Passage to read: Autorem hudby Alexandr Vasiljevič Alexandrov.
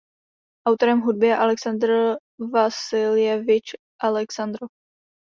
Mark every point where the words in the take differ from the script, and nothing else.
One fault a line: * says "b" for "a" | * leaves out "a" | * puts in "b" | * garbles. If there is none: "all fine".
* puts in "je"